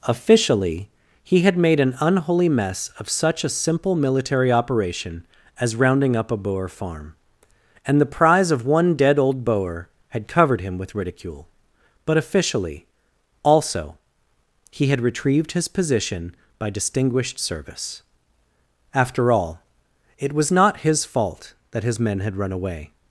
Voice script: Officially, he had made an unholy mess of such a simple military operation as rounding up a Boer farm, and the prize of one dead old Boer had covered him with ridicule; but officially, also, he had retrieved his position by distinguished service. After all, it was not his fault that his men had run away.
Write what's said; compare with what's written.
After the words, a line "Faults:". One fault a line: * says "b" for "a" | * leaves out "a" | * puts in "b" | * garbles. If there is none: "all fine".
Officially, he had made an unholy mess of such a simple military operation as rounding up a Boer farm, and the prize of one dead old Boer had covered him with ridicule; but officially, also, he had retrieved his position by distinguished service. After all, it was not his fault that his men had run away.
Faults:
all fine